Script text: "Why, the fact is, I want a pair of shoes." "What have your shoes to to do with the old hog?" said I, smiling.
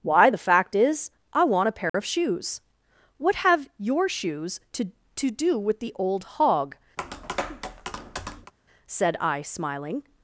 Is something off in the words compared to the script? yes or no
no